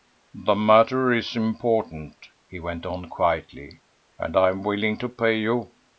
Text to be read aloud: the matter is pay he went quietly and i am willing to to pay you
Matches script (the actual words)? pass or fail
fail